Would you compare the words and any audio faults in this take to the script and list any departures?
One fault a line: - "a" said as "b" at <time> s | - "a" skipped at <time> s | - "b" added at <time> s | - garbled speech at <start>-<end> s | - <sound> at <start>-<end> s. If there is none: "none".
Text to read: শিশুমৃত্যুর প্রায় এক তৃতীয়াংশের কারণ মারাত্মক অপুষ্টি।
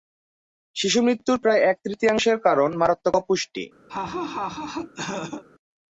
- laugh at 3.9-5.4 s